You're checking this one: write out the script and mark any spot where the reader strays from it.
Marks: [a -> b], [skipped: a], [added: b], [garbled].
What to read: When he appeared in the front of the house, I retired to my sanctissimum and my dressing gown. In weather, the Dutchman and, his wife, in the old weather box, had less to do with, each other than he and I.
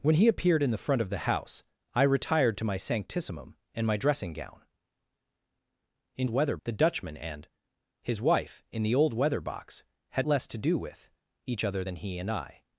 When he appeared in the front of the house, I retired to my sanctissimum and my dressing gown. In weather, the Dutchman and, his wife, in the old weather box, had less to do with, each other than he and I.